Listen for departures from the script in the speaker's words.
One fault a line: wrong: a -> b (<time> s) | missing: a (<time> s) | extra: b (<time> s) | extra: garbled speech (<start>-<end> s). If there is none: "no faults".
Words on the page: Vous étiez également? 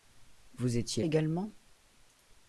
no faults